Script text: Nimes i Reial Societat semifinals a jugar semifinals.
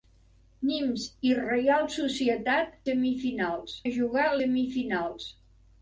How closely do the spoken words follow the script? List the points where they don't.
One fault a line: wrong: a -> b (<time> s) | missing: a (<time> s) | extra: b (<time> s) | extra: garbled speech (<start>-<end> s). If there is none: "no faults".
no faults